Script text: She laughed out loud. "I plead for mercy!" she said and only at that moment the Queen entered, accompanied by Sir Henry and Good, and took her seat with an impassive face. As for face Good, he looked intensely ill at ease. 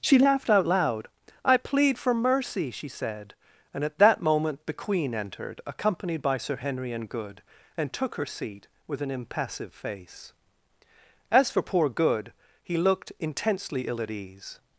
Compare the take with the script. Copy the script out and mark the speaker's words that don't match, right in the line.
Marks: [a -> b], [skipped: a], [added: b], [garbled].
She laughed out loud. "I plead for mercy!" she said and [skipped: only] at that moment the Queen entered, accompanied by Sir Henry and Good, and took her seat with an impassive face. As for [face -> poor] Good, he looked intensely ill at ease.